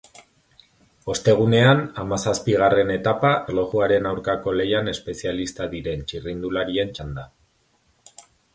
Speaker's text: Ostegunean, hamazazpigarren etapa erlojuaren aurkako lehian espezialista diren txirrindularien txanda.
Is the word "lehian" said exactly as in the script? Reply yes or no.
yes